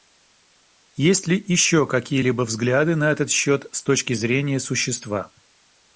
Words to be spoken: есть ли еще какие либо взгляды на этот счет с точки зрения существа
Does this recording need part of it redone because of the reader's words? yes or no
no